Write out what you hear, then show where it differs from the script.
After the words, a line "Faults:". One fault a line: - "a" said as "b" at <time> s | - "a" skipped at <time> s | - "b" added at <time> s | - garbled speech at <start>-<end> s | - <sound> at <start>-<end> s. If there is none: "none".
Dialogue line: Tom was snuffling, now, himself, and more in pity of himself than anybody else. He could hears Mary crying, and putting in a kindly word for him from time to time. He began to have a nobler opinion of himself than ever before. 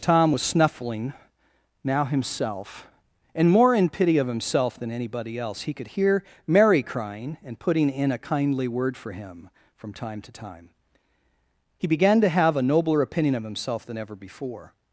Tom was snuffling, now, himself, and more in pity of himself than anybody else. He could hear Mary crying, and putting in a kindly word for him from time to time. He began to have a nobler opinion of himself than ever before.
Faults:
- "hears" said as "hear" at 5.9 s